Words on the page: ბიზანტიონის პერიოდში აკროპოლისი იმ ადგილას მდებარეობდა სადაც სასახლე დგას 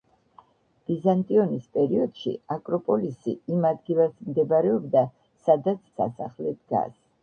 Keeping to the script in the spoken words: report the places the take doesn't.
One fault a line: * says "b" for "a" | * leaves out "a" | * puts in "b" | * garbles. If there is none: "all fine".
all fine